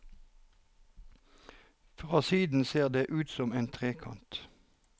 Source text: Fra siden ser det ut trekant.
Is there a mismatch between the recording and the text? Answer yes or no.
yes